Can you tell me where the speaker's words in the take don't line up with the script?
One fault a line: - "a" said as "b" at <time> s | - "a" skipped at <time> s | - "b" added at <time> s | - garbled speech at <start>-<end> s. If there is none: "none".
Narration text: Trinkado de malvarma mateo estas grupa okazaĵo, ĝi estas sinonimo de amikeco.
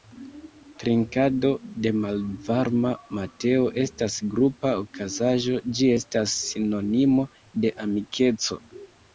none